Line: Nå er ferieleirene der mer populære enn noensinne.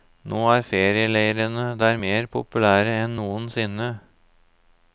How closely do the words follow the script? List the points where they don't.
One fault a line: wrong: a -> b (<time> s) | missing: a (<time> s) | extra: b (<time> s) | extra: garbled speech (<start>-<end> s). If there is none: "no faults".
no faults